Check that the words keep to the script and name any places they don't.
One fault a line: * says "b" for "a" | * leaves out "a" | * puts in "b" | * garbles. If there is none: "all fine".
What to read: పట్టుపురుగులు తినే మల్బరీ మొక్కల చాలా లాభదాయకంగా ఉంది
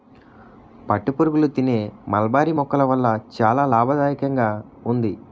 * puts in "వల్ల"